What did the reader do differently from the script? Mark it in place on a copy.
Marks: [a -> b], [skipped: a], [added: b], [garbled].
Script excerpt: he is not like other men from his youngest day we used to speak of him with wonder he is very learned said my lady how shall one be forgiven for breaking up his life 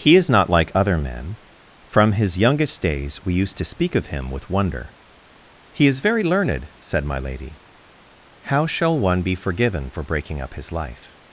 he is not like other men from his youngest [day -> days] we used to speak of him with wonder he is very learned said my lady how shall one be forgiven for breaking up his life